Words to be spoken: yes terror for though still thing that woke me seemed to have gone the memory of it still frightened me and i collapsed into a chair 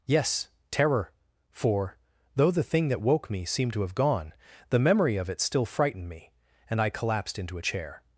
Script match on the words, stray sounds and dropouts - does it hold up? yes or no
no